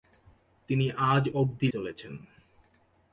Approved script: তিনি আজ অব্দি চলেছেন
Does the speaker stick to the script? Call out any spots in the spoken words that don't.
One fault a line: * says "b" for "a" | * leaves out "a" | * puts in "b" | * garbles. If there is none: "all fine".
all fine